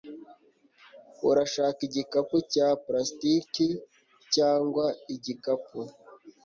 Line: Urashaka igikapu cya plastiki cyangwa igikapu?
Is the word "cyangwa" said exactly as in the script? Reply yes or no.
yes